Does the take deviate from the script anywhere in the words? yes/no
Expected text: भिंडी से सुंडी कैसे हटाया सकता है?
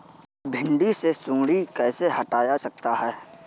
no